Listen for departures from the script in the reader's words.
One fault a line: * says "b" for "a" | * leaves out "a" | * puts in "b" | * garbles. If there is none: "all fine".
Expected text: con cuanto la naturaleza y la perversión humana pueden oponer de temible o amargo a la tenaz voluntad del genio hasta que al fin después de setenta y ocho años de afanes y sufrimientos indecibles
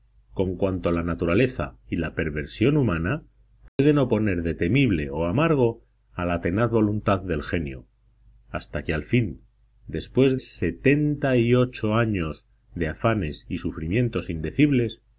* leaves out "de"